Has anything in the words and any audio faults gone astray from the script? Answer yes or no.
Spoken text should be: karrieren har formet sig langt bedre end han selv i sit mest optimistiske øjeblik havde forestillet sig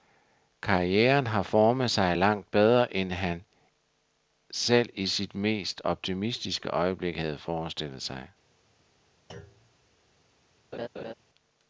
yes